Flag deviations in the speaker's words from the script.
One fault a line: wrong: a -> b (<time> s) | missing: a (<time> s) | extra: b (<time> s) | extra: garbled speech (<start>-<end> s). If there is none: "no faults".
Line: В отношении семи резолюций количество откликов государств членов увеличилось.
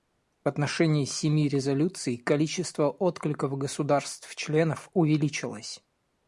no faults